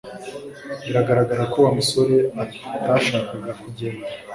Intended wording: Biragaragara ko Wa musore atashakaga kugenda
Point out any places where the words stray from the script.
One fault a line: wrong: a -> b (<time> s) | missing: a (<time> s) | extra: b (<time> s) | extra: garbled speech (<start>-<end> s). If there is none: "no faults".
no faults